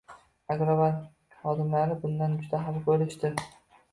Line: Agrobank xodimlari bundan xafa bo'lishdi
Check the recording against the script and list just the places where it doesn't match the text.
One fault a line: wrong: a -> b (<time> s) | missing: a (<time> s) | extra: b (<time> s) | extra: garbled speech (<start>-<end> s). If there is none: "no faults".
extra: juda (2.4 s)